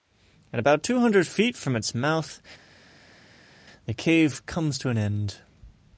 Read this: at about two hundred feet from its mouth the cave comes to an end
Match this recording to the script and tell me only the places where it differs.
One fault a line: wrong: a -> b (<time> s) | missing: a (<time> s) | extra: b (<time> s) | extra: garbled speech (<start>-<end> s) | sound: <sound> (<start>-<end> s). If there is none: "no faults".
no faults